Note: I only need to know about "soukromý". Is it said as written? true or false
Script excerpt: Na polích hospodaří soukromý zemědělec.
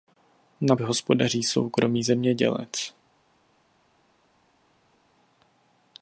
true